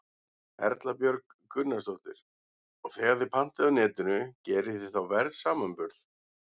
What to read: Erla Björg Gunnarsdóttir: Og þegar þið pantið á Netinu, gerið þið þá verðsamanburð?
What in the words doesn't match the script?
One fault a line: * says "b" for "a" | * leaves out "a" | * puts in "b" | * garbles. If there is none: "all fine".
all fine